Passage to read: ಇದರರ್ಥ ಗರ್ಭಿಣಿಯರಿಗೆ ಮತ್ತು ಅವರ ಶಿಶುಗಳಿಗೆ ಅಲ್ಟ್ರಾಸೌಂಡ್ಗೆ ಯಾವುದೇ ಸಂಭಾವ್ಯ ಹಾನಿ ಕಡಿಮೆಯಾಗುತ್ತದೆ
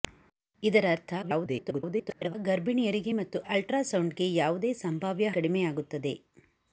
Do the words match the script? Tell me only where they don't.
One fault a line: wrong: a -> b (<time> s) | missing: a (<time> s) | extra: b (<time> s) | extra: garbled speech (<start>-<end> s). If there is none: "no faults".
extra: garbled speech (1.2-2.3 s)
missing: ಅವರ ಶಿಶುಗಳಿಗೆ (3.4 s)
missing: ಹಾನಿ (5.3 s)